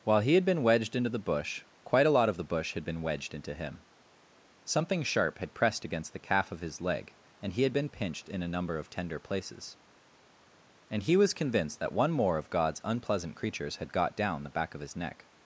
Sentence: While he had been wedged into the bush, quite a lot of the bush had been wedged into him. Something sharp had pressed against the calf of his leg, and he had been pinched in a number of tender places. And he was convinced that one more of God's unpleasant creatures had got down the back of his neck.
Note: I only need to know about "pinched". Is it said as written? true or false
true